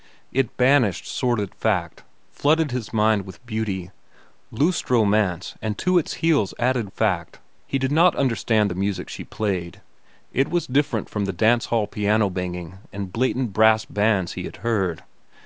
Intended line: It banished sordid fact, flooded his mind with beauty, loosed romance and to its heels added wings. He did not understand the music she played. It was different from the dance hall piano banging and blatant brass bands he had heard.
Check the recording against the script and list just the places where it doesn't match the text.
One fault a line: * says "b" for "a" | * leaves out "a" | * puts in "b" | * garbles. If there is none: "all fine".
* says "fact" for "wings"